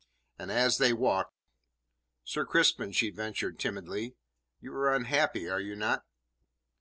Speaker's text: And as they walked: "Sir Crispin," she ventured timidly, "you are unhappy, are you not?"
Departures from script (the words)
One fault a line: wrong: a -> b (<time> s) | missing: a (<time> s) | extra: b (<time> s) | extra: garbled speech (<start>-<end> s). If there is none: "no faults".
no faults